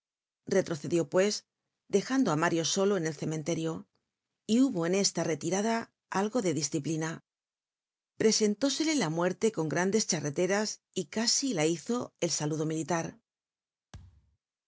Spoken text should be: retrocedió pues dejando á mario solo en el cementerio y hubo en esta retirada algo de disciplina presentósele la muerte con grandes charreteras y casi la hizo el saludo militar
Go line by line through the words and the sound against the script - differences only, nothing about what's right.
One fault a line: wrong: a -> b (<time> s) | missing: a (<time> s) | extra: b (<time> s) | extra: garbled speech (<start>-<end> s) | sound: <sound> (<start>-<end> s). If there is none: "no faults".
sound: thud (13.9-14.4 s)